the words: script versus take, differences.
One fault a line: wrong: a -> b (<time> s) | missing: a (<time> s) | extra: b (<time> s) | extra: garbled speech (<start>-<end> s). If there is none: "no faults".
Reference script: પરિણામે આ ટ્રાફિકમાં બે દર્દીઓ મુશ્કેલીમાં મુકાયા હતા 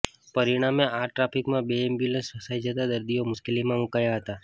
extra: એમ્બ્યુલન્સ ફસાઈ જતા (1.8 s)